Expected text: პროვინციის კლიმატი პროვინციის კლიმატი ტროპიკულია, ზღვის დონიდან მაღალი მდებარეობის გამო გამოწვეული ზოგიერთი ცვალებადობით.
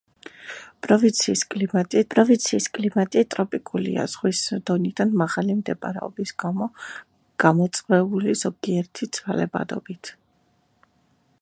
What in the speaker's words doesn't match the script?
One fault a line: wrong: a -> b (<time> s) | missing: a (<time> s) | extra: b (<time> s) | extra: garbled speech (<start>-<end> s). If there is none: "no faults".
no faults